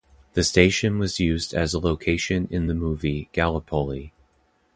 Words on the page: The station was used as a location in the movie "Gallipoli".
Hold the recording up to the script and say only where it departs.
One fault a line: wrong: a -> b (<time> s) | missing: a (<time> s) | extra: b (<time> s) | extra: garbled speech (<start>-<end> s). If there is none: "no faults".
no faults